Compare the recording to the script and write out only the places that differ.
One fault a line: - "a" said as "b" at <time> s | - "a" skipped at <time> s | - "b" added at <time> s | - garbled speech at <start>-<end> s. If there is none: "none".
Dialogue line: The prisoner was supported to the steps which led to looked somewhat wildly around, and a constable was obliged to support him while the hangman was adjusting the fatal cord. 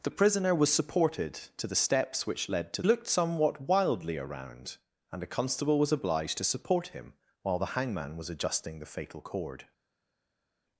none